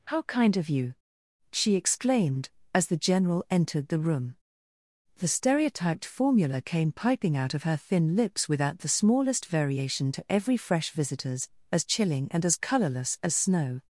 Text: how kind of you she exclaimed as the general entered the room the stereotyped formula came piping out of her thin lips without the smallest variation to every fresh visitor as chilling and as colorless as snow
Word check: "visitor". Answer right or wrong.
wrong